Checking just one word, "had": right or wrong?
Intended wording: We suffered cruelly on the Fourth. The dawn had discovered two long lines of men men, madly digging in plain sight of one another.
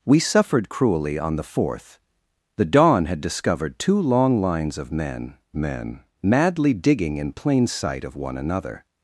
right